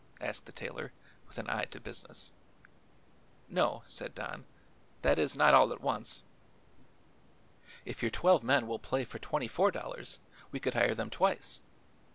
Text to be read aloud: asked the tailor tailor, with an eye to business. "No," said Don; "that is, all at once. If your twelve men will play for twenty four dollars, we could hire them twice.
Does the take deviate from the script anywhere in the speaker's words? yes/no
yes